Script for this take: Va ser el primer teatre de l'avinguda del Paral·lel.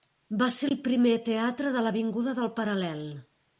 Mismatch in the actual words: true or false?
false